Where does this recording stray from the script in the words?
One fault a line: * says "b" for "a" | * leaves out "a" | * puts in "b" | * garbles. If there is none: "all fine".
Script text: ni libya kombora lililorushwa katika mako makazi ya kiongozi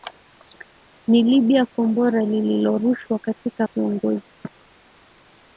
* leaves out "mako makazi ya"